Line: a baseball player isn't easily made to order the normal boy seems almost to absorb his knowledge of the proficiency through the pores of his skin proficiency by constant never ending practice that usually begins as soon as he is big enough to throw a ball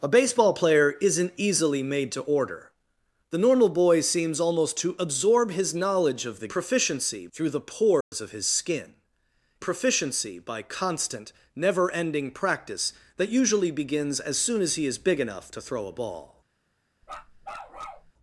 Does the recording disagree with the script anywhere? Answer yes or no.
no